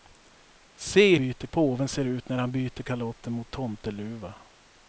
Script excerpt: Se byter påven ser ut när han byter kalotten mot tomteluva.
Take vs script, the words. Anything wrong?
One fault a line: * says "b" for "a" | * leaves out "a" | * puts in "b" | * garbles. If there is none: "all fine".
all fine